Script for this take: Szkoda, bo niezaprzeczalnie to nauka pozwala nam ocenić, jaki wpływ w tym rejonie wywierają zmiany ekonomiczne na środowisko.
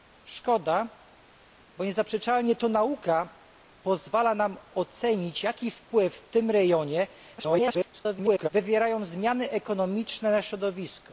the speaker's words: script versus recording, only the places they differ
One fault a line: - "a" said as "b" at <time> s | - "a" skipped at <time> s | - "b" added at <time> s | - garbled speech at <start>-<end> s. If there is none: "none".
- garbled speech at 7.4-8.5 s